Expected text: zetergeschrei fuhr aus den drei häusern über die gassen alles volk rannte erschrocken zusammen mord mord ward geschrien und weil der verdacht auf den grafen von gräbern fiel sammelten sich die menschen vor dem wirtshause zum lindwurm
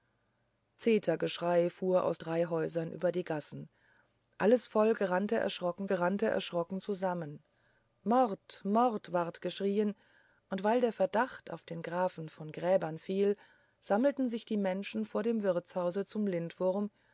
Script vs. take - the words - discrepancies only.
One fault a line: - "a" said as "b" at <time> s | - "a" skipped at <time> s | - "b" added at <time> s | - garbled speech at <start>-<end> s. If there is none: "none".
- "den" skipped at 2.2 s
- "rannte erschrocken" added at 5.9 s